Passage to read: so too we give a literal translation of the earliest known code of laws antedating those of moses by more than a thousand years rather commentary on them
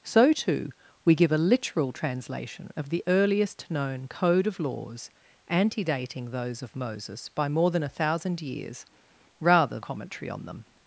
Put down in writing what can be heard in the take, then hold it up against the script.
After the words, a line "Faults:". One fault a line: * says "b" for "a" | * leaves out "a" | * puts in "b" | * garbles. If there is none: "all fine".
so too we give a literal translation of the earliest known code of laws antedating those of moses by more than a thousand years rather commentary on them
Faults:
all fine